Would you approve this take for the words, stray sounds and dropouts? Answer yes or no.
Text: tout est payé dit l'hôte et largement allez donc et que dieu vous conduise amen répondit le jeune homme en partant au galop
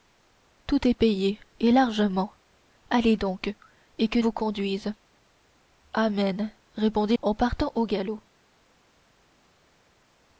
no